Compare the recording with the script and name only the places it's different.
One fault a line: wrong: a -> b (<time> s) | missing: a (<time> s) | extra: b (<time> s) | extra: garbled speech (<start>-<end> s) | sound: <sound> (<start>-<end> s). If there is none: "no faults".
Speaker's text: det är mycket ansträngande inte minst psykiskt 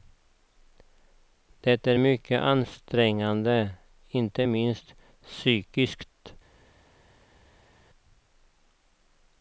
no faults